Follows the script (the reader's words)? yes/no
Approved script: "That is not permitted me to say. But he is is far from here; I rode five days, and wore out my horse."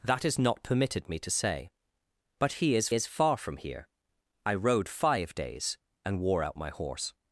yes